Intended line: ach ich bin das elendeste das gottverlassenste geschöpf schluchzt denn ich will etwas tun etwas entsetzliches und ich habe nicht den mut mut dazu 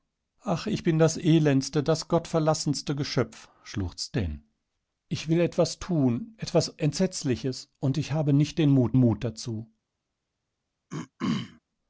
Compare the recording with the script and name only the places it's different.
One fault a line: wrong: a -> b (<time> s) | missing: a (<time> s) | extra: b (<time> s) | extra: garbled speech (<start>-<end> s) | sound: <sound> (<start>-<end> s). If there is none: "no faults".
sound: throat clearing (10.9-11.6 s)